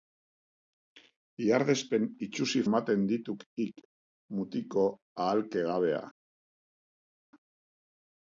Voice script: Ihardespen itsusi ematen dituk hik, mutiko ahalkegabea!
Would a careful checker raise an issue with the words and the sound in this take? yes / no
no